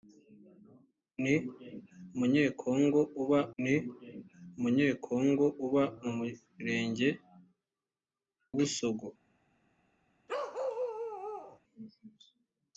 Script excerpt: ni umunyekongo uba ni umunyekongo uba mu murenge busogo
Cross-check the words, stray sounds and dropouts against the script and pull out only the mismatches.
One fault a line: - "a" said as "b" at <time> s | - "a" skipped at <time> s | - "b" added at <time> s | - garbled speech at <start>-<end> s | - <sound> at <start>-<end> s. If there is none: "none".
- bark at 10.3-11.6 s